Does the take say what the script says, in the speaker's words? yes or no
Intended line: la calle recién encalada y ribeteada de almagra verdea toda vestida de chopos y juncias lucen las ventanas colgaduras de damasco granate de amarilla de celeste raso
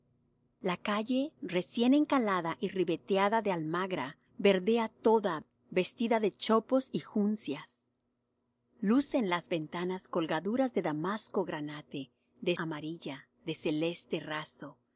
yes